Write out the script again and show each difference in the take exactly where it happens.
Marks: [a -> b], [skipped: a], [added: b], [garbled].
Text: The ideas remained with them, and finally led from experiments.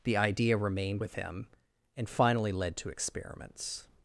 The [ideas -> idea] remained with [them, -> him] and finally led [from -> to] experiments.